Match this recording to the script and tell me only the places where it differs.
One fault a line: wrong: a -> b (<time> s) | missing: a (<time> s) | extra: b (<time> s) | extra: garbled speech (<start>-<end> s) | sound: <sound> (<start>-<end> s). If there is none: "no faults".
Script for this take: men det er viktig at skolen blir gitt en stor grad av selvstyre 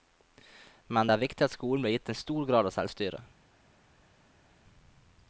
no faults